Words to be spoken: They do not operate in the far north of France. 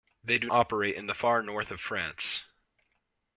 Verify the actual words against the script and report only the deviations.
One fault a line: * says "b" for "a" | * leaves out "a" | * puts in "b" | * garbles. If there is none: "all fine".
* leaves out "not"